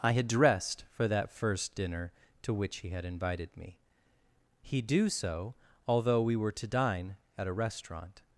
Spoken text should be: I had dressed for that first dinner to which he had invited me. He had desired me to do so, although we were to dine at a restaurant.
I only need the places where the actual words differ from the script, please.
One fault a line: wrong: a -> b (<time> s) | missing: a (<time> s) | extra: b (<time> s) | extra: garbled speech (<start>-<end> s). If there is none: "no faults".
missing: had desired me to (4.8 s)